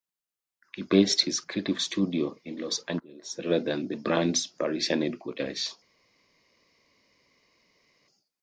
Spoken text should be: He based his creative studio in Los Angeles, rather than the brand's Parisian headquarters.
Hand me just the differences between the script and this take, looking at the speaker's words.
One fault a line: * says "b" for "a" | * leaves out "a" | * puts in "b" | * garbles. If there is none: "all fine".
all fine